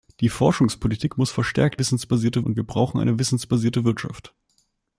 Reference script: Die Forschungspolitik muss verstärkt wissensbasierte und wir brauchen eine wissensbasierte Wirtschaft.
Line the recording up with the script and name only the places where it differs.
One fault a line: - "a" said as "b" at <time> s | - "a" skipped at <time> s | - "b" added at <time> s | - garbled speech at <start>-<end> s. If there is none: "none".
none